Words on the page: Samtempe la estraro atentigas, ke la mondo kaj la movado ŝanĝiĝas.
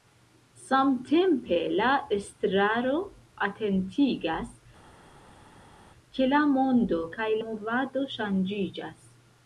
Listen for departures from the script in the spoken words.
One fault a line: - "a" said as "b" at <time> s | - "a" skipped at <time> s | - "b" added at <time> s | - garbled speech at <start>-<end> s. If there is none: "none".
- "la" skipped at 7.3 s